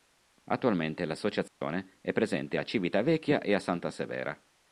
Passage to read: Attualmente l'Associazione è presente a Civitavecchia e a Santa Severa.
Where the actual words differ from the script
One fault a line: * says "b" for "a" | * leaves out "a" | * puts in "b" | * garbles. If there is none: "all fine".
all fine